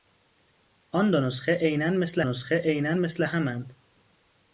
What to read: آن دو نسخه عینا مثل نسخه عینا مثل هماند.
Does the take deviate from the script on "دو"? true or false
false